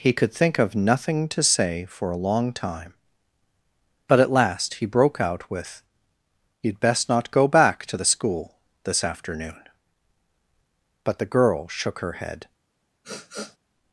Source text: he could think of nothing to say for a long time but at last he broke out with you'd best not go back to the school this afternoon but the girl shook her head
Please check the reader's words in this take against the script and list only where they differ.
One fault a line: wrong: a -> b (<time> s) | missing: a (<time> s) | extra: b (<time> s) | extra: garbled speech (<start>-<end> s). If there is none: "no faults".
no faults